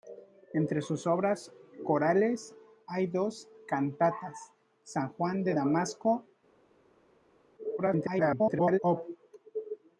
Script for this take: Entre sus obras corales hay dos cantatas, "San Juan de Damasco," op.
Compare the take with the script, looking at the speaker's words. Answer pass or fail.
fail